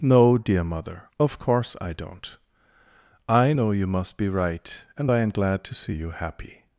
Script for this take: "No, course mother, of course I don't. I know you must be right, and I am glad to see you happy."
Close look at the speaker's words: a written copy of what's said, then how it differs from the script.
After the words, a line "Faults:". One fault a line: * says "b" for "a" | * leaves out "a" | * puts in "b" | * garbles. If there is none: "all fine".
"No, dear mother, of course I don't. I know you must be right, and I am glad to see you happy."
Faults:
* says "dear" for "course"